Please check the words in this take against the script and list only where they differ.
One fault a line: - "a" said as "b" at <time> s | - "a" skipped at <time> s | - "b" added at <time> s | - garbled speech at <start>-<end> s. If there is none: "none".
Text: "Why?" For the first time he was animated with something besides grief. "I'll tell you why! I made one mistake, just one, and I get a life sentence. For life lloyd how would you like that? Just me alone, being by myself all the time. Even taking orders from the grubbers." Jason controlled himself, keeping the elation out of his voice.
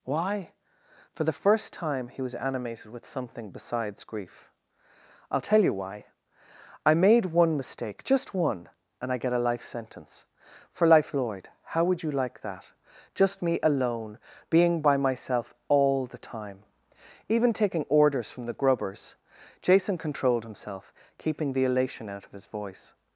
none